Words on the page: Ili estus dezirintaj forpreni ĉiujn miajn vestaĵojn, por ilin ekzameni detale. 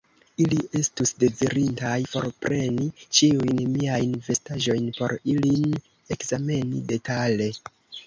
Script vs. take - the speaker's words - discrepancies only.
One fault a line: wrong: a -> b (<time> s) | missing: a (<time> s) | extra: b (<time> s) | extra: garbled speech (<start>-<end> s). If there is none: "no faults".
no faults